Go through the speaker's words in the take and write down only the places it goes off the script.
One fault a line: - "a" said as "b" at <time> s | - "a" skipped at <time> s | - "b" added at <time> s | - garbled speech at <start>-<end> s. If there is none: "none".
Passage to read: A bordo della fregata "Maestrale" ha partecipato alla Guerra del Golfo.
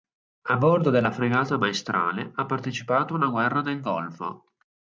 none